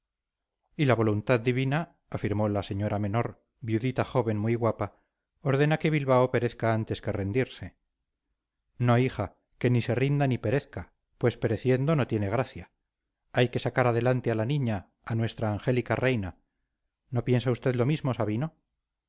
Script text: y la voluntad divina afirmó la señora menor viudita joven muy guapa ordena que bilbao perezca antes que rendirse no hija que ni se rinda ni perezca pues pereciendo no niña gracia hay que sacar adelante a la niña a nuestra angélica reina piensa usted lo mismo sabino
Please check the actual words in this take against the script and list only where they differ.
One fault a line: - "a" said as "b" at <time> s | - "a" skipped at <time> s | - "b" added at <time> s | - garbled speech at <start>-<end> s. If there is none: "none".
- "niña" said as "tiene" at 12.1 s
- "no" added at 17.1 s